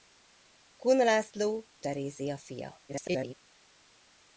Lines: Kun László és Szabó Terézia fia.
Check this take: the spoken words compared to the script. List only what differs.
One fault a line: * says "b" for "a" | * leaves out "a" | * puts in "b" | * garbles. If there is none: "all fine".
* leaves out "és Szabó"
* garbles